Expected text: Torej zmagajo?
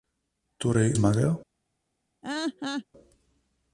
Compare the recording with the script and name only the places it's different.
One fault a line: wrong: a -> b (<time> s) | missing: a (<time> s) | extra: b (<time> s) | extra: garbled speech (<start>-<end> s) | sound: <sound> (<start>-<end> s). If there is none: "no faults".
sound: laugh (2.2-2.9 s)